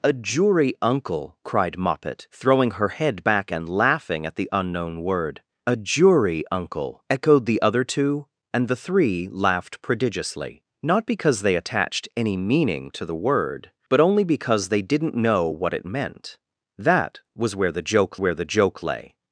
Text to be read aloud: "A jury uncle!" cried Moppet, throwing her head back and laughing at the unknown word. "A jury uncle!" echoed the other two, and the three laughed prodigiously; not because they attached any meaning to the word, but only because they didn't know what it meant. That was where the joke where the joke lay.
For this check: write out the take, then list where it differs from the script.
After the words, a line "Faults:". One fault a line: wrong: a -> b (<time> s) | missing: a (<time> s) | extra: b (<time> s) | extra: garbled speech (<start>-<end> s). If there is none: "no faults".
"A jury uncle!" cried Moppet, throwing her head back and laughing at the unknown word. "A jury uncle!" echoed the other two, and the three laughed prodigiously; not because they attached any meaning to the word, but only because they didn't know what it meant. That was where the joke where the joke lay.
Faults:
no faults